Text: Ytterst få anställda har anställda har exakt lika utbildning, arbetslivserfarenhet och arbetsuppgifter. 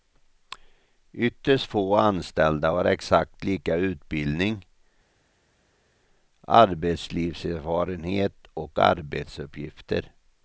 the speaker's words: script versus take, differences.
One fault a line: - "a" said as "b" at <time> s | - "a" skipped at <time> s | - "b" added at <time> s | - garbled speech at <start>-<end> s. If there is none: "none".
- "anställda har" skipped at 2.8 s